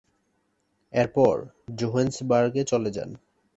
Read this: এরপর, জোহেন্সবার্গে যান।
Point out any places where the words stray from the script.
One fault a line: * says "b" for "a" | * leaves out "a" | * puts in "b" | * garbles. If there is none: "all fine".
* puts in "চলে"